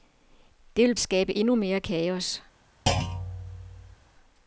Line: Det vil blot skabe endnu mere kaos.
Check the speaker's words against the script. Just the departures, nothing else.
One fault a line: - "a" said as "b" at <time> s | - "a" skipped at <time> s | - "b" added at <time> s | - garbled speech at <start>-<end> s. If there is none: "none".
- "blot" skipped at 0.9 s